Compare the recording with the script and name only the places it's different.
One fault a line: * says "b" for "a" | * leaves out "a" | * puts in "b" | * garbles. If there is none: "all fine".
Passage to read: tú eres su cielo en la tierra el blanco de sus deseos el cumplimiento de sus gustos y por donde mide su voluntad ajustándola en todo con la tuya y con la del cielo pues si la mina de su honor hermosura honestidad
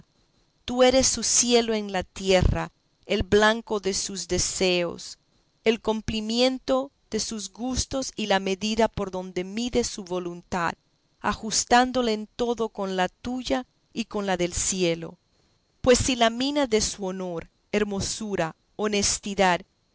* puts in "la medida"